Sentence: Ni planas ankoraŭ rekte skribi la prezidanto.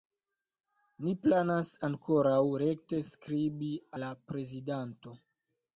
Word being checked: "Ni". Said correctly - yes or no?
yes